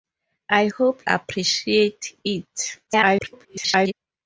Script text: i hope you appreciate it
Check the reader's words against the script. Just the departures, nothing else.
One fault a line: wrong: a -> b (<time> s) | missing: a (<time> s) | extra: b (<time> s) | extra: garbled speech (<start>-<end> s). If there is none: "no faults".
missing: you (1.1 s)
extra: garbled speech (2.9-3.9 s)